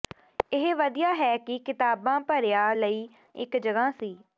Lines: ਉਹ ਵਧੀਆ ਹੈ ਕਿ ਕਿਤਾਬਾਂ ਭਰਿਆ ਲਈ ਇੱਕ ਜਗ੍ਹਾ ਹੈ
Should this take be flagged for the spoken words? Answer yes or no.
yes